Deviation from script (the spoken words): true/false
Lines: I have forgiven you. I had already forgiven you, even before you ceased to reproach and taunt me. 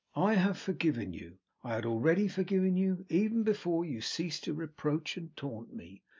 false